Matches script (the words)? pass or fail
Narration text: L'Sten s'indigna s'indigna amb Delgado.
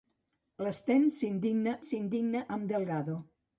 pass